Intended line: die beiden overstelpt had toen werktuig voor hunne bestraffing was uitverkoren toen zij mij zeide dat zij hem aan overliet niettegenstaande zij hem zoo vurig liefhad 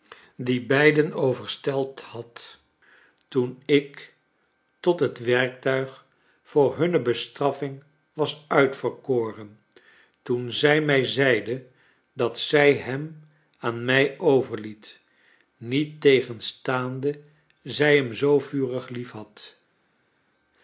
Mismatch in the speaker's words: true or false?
true